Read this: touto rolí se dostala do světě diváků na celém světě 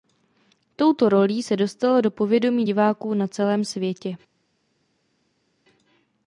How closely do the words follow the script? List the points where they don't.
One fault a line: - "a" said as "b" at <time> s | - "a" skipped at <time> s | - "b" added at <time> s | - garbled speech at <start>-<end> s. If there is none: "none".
- "světě" said as "povědomí" at 2.1 s